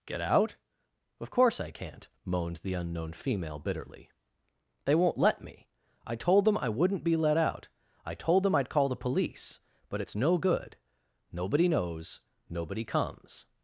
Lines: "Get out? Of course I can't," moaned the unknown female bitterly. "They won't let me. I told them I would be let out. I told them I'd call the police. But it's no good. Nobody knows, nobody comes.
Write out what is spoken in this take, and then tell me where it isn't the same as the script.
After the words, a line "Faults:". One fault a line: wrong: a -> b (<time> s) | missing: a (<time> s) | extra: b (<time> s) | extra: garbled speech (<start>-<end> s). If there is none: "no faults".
"Get out? Of course I can't," moaned the unknown female bitterly. "They won't let me. I told them I wouldn't be let out. I told them I'd call the police. But it's no good. Nobody knows, nobody comes.
Faults:
wrong: would -> wouldn't (6.7 s)